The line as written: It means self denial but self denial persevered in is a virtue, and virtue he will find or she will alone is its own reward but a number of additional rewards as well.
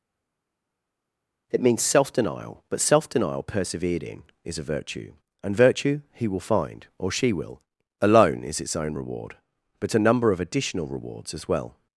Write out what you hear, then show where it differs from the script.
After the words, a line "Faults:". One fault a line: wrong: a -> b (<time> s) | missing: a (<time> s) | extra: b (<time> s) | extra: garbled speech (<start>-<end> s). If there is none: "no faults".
It means self denial but self denial persevered in is a virtue, and virtue he will find or she will alone is its own reward but a number of additional rewards as well.
Faults:
no faults